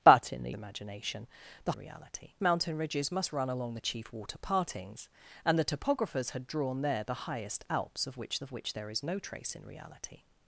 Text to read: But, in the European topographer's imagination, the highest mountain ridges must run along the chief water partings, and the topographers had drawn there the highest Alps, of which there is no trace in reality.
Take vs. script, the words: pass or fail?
fail